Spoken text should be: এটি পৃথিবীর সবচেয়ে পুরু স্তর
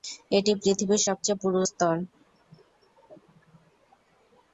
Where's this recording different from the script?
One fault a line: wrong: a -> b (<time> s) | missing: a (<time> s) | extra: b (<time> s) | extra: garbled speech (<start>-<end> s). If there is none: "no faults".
no faults